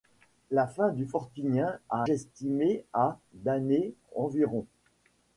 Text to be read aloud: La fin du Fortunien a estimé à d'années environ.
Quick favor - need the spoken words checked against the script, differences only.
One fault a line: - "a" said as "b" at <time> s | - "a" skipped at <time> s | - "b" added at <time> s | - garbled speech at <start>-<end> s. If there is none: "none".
none